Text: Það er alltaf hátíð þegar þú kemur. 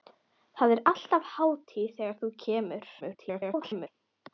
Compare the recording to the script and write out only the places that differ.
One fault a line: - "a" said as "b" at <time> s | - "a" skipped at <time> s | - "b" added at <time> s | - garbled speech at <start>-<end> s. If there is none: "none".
- garbled speech at 3.0-3.9 s